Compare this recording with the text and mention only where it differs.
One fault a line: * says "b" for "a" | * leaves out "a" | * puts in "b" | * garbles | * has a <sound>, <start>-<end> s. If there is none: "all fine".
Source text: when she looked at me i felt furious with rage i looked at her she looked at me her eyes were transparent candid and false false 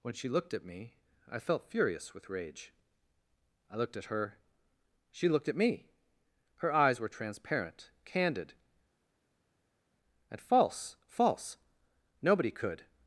* puts in "nobody could"